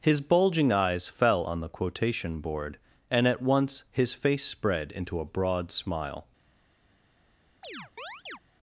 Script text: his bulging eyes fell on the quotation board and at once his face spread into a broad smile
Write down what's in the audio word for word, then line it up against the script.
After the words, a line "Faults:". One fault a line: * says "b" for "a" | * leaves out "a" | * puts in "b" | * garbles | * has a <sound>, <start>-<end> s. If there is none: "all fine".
his bulging eyes fell on the quotation board and at once his face spread into a broad smile
Faults:
* has a chirp, 7.6-8.4 s